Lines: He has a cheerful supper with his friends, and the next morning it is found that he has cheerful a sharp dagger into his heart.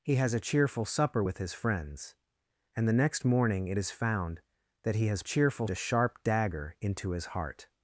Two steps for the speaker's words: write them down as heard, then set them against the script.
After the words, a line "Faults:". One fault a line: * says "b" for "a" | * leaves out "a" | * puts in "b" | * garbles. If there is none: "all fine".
He has a cheerful supper with his friends, and the next morning it is found that he has cheerful a sharp dagger into his heart.
Faults:
all fine